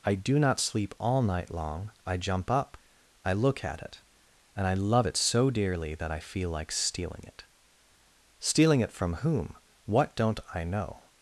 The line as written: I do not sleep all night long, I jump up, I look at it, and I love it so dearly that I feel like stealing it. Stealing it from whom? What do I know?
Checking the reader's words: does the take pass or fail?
fail